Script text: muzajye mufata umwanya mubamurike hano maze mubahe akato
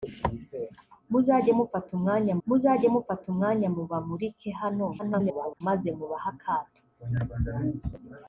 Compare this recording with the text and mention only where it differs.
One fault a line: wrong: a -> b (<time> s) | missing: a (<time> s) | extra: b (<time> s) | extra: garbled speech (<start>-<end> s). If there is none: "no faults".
extra: muzajye mufata umwanya (2.5 s)
extra: garbled speech (5.0-5.6 s)